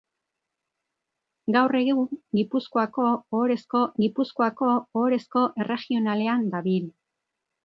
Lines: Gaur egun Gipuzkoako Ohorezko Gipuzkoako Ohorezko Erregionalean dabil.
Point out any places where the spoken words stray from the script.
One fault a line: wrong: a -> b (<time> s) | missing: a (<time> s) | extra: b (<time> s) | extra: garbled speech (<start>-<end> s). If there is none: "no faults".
no faults